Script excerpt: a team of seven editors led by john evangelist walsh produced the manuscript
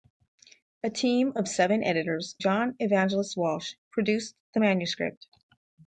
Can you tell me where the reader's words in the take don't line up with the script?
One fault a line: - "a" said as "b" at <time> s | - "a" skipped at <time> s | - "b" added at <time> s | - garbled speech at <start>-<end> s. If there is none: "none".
- "led by" skipped at 2.3 s